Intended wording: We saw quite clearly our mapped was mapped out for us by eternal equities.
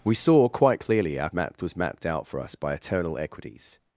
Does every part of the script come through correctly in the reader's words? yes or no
yes